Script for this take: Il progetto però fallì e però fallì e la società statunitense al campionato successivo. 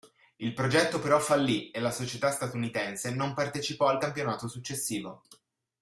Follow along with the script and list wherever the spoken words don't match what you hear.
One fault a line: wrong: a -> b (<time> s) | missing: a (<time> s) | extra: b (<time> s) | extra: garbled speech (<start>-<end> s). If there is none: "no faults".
missing: però fallì e (1.8 s)
extra: non partecipò (3.1 s)